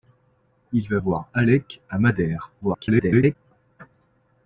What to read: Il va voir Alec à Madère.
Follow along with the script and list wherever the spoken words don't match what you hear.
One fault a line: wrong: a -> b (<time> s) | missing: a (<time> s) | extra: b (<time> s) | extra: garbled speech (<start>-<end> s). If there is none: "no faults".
extra: garbled speech (2.6-3.4 s)